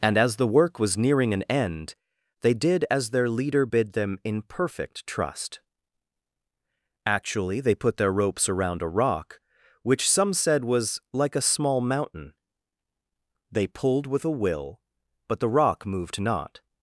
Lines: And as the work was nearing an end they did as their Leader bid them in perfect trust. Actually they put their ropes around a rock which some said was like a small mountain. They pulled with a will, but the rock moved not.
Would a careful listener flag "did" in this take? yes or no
no